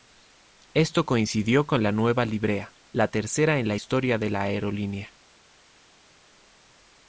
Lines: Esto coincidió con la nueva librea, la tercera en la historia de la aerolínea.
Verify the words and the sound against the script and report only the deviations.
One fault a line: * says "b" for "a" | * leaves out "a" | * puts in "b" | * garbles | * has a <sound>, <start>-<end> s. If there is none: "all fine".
all fine